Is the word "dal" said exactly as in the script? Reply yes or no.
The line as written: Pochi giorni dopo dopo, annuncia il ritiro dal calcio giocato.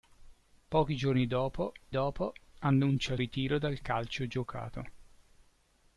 yes